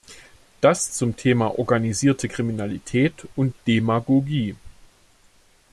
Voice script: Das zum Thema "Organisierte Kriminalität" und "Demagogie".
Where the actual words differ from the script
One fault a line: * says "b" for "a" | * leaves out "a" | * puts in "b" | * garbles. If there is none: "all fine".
all fine